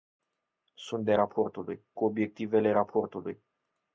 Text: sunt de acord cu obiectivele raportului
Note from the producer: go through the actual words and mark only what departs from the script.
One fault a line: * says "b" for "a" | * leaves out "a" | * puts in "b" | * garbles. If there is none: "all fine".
* says "raportului" for "acord"